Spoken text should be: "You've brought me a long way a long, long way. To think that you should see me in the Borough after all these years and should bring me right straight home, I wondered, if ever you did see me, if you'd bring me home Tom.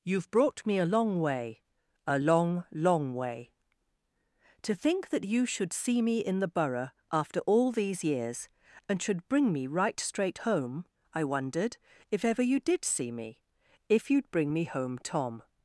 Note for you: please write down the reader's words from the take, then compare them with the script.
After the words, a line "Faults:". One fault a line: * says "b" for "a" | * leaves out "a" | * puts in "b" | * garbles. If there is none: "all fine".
"You've brought me a long way a long, long way. To think that you should see me in the Borough after all these years and should bring me right straight home, I wondered, if ever you did see me, if you'd bring me home Tom.
Faults:
all fine